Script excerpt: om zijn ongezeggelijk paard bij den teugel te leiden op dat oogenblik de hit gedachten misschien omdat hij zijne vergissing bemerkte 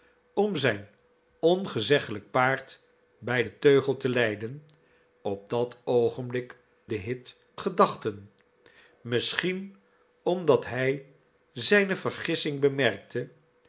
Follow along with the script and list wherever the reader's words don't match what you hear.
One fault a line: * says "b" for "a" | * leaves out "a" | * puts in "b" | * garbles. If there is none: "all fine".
all fine